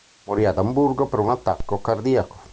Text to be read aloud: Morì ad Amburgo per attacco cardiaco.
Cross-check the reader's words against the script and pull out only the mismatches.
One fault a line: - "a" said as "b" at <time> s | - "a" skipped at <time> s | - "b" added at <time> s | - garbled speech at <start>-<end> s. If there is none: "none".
- "un" added at 1.2 s